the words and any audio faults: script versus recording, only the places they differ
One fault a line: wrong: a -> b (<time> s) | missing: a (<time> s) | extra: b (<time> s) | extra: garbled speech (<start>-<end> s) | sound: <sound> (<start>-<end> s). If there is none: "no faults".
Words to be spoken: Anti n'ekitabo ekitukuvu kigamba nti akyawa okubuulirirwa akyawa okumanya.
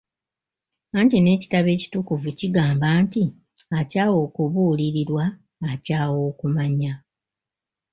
no faults